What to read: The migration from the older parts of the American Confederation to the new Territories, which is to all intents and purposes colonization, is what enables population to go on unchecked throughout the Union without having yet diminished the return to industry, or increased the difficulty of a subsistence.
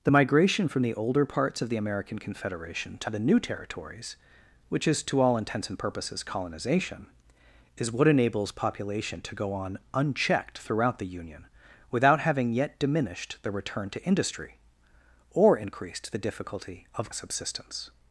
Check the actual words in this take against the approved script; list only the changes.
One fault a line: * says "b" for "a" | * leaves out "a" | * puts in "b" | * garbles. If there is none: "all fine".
all fine